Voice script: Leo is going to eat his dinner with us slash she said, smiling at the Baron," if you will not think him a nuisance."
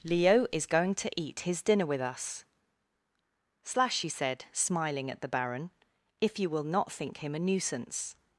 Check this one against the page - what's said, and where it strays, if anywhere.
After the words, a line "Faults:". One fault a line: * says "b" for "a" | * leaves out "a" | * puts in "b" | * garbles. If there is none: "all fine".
Leo is going to eat his dinner with us slash he said, smiling at the Baron," if you will not think him a nuisance."
Faults:
* says "he" for "she"